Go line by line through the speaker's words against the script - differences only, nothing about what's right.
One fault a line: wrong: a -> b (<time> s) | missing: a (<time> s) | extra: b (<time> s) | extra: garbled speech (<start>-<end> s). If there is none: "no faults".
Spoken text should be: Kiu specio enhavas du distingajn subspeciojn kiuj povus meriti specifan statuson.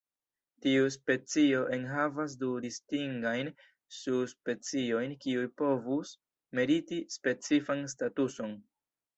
wrong: Kiu -> Tiu (0.7 s)